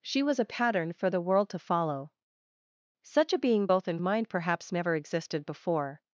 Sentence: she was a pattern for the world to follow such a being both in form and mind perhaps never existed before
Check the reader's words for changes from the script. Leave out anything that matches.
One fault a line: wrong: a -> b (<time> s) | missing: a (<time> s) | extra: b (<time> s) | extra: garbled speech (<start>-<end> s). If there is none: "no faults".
missing: form and (4.0 s)